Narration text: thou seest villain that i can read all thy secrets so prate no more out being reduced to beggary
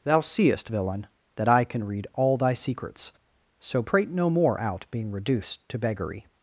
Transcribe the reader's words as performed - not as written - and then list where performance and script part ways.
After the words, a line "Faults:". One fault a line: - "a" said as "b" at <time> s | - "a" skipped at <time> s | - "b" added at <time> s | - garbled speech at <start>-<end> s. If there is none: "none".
thou seest villain that i can read all thy secrets so prate no more out being reduced to beggary
Faults:
none